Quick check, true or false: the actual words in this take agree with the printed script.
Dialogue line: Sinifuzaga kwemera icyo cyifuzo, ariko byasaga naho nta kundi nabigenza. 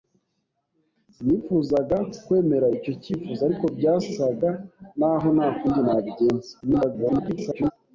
false